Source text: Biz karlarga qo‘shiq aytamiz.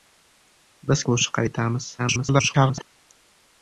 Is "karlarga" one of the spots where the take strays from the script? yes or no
yes